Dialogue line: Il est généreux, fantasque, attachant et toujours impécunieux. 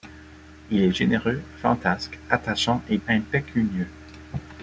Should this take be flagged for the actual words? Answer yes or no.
yes